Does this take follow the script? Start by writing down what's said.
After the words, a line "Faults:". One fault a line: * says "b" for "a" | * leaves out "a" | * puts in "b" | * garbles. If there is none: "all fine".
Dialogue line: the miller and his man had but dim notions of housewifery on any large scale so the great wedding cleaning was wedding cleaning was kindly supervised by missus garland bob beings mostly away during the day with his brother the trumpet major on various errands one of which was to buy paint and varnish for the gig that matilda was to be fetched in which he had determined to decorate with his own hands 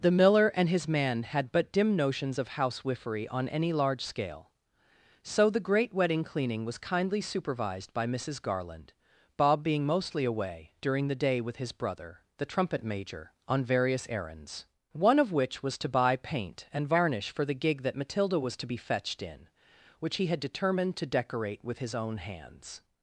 the miller and his man had but dim notions of housewifery on any large scale so the great wedding cleaning was kindly supervised by missus garland bob being mostly away during the day with his brother the trumpet major on various errands one of which was to buy paint and varnish for the gig that matilda was to be fetched in which he had determined to decorate with his own hands
Faults:
* leaves out "wedding cleaning was"
* says "being" for "beings"